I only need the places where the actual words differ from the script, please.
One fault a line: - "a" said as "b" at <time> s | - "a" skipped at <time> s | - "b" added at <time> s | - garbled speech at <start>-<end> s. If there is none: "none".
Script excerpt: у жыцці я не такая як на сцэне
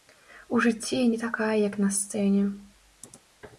none